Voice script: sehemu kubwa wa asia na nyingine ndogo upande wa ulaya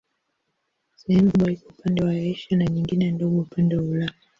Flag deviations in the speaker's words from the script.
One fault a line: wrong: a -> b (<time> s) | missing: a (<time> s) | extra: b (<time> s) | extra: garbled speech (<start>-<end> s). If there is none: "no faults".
extra: iko upande (1.5 s)